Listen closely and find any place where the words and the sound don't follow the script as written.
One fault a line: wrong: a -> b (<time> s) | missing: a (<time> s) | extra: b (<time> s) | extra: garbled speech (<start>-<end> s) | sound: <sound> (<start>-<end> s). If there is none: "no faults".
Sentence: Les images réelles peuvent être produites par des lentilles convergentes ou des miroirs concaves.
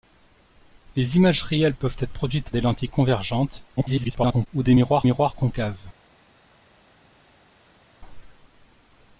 missing: par (2.5 s)
extra: garbled speech (3.8-4.5 s)
extra: miroirs (5.0 s)